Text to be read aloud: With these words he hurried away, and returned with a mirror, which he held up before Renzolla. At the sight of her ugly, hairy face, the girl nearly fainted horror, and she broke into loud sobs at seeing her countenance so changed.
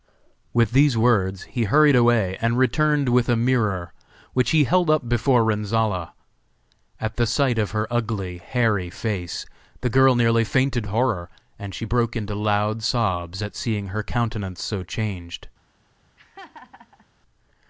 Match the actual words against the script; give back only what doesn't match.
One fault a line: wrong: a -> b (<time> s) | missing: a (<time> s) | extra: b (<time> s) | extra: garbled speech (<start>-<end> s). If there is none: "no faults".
no faults